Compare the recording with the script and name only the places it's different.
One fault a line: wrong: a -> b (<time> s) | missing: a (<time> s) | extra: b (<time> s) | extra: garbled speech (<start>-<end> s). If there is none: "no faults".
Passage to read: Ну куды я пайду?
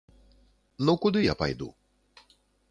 no faults